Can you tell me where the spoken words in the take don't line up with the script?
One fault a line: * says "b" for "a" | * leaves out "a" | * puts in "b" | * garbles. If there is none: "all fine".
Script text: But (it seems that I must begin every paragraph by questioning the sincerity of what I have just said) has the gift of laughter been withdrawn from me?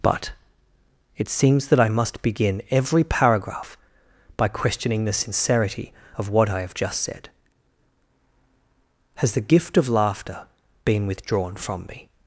all fine